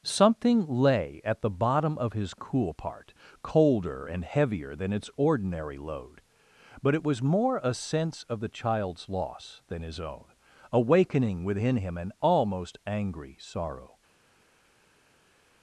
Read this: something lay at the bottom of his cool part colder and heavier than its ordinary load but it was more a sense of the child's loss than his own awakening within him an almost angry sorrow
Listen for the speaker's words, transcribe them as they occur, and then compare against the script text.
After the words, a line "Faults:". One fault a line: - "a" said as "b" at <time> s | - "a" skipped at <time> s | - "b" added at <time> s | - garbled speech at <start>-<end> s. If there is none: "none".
something lay at the bottom of his cool part colder and heavier than its ordinary load but it was more a sense of the child's loss than his own awakening within him an almost angry sorrow
Faults:
none